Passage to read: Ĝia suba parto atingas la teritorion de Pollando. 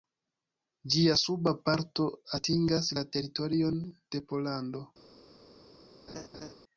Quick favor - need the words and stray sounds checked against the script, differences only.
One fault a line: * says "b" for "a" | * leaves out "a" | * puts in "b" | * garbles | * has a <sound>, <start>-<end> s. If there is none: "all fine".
* has a laugh, 6.1-6.5 s